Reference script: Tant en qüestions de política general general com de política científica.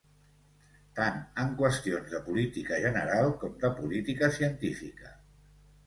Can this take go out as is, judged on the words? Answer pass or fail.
fail